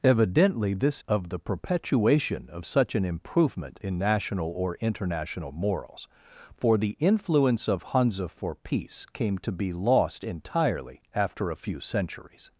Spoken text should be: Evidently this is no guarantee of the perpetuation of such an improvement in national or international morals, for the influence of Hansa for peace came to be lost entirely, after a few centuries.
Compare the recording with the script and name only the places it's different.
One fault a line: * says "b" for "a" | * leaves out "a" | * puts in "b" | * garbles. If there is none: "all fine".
* leaves out "is no guarantee"